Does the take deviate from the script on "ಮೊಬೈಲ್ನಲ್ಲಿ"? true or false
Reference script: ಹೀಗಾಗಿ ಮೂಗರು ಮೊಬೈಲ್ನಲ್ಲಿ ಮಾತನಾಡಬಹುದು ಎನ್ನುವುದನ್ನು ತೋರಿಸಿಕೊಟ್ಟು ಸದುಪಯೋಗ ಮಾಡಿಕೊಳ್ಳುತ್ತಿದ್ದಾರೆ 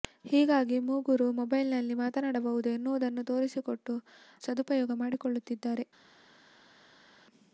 false